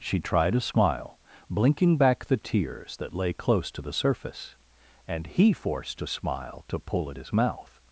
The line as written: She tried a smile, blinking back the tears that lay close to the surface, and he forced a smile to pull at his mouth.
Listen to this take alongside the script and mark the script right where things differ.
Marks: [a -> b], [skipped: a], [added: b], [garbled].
She tried a smile, blinking back the tears that lay close to the surface, and he forced a smile to pull at his mouth.